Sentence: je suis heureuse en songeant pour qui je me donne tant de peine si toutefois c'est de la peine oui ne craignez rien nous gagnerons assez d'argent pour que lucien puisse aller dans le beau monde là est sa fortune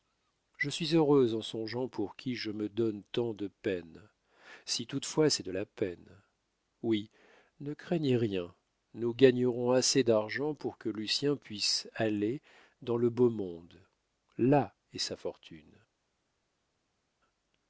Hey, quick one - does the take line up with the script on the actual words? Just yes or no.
yes